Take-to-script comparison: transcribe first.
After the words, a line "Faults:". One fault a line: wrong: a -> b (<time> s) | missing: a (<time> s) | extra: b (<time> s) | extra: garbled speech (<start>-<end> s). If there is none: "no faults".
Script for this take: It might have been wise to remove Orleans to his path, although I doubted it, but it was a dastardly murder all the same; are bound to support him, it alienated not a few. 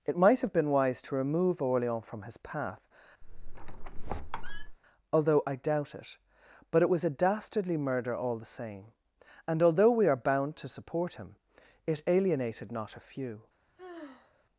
It might have been wise to remove Orleans from his path, although I doubt it, but it was a dastardly murder all the same; and although we are bound to support him, it alienated not a few.
Faults:
wrong: to -> from (2.1 s)
wrong: doubted -> doubt (5.6 s)
extra: and although we (9.5 s)